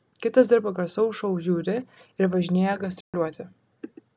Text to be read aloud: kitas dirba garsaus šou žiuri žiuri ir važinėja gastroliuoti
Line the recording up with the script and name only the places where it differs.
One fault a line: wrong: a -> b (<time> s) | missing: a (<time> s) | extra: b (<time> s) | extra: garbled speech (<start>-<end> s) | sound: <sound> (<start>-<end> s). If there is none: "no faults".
missing: žiuri (1.8 s)
sound: dropout (3.0-3.1 s)